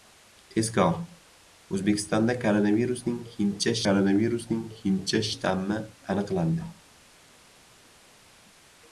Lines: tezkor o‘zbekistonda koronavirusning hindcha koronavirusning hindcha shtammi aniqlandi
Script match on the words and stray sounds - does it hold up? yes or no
yes